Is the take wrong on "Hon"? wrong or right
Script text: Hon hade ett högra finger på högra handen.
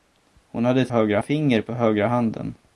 right